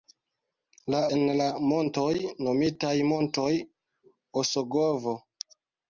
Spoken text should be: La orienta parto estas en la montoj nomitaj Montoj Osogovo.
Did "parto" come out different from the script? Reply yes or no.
yes